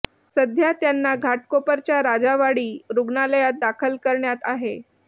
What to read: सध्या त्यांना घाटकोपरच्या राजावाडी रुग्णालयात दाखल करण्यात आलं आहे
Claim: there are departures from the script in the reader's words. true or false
true